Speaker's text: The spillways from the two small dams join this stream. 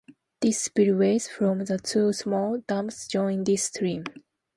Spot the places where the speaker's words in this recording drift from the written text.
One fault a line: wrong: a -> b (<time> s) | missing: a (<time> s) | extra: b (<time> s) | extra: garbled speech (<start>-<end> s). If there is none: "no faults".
no faults